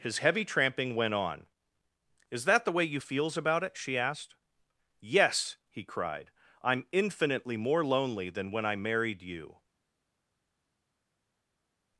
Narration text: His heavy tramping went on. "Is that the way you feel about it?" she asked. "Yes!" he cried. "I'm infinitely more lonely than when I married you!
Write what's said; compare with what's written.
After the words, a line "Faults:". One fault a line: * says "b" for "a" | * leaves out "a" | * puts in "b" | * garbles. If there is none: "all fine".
His heavy tramping went on. "Is that the way you feels about it?" she asked. "Yes!" he cried. "I'm infinitely more lonely than when I married you!
Faults:
* says "feels" for "feel"